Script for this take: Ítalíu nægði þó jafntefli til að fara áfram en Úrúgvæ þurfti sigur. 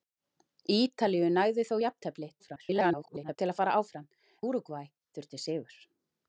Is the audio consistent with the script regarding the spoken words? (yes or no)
no